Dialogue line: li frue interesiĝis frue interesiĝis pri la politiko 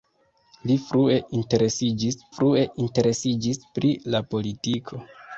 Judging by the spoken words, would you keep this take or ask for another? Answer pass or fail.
pass